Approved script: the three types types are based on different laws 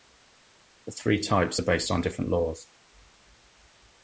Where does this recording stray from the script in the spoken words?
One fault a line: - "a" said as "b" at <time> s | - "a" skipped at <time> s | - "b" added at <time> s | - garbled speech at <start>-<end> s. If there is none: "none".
- "types" skipped at 1.6 s